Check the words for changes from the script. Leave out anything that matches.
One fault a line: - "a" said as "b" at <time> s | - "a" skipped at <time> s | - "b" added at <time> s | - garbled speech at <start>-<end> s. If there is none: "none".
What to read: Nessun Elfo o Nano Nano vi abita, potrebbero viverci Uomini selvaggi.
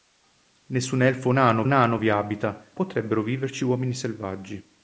none